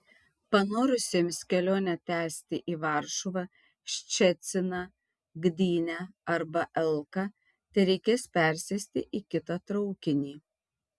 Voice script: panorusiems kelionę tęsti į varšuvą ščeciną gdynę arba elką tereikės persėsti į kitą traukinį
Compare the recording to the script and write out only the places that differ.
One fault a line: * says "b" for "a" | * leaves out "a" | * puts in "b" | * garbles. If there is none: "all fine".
all fine